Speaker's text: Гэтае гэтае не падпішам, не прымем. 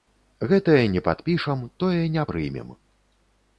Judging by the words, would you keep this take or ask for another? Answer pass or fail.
fail